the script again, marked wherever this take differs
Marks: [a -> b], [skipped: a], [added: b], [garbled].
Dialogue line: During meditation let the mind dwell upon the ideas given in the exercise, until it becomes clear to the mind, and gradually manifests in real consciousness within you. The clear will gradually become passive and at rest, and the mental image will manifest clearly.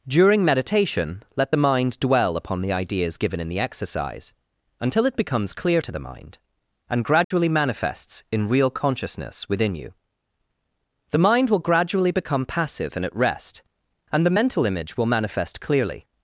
During meditation let the mind dwell upon the ideas given in the exercise, until it becomes clear to the mind, and gradually manifests in real consciousness within you. The [clear -> mind] will gradually become passive and at rest, and the mental image will manifest clearly.